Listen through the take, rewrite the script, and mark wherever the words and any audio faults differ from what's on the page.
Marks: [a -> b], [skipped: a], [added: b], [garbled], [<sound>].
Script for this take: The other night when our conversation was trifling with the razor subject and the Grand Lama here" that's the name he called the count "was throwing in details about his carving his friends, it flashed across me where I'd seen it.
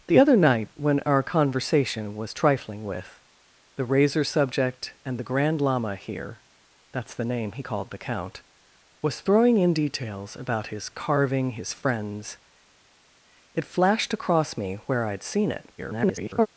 The other night when our conversation was trifling with the razor subject and the Grand Lama here" that's the name he called the count "was throwing in details about his carving his friends, it flashed across me where I'd seen it. [garbled]